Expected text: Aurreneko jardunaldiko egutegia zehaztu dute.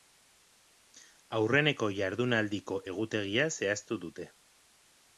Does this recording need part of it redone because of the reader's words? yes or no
no